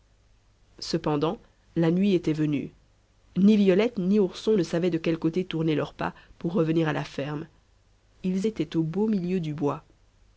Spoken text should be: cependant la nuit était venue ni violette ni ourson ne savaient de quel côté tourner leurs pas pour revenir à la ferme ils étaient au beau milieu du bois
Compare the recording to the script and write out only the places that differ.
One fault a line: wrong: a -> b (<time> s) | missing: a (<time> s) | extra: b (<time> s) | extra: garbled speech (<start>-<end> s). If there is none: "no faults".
no faults